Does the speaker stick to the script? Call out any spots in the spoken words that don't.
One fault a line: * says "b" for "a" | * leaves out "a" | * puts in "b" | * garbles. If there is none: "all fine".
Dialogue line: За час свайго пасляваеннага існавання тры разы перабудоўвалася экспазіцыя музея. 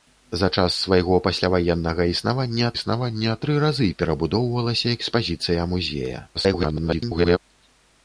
* puts in "існавання"
* garbles